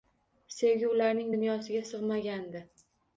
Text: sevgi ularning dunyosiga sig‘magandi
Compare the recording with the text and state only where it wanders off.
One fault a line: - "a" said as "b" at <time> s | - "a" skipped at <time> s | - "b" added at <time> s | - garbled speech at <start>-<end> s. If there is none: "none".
none